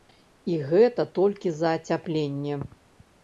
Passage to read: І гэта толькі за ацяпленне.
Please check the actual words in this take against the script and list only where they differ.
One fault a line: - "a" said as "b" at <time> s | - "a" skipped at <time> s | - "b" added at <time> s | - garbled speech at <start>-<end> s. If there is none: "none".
none